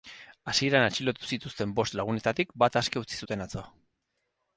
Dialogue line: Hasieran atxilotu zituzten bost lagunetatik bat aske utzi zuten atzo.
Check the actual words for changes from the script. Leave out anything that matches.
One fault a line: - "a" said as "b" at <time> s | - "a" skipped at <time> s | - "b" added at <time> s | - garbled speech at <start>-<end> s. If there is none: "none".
none